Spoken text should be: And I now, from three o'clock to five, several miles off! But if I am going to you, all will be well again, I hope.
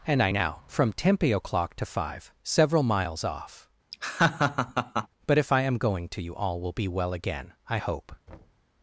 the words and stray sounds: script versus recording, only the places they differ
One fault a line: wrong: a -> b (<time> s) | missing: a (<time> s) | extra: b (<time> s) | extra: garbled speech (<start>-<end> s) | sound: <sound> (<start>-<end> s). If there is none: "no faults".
wrong: three -> tempe (0.9 s)
sound: laugh (3.9-5.1 s)
sound: thud (8.3-8.6 s)